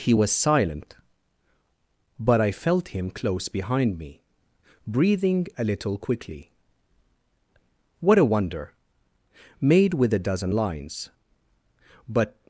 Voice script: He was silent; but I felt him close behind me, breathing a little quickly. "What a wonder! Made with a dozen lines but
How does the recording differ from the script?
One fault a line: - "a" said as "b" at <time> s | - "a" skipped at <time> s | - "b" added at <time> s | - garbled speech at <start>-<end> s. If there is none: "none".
none